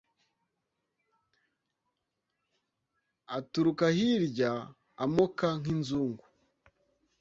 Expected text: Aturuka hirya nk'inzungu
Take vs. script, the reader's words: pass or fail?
fail